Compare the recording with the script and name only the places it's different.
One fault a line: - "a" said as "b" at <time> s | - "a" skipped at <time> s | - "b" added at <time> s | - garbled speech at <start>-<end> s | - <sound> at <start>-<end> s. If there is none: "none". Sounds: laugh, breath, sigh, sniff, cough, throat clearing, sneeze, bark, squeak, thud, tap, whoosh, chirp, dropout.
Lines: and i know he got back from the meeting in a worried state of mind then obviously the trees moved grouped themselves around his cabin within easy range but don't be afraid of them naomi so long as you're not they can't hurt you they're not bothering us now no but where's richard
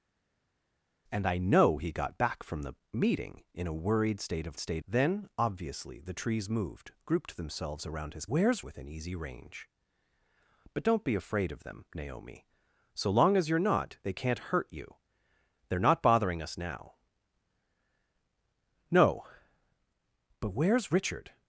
- "mind" said as "state" at 4.6 s
- "cabin" said as "where's" at 8.2 s